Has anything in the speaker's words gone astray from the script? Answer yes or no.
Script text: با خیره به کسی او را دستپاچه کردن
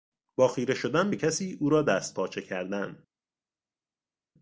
yes